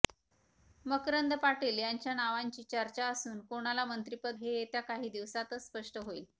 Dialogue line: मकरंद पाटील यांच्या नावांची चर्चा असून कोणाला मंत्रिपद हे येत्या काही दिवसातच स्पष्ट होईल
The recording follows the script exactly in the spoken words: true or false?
true